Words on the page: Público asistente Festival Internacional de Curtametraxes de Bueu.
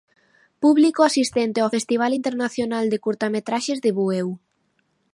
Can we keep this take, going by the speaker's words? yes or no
no